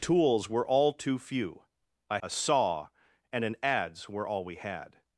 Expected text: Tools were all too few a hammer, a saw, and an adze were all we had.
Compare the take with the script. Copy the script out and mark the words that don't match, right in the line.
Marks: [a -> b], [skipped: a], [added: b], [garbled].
Tools were all too few a [skipped: hammer,] a saw, and an adze were all we had.